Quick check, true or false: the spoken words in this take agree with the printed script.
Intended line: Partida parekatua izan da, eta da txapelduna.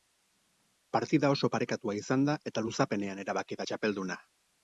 false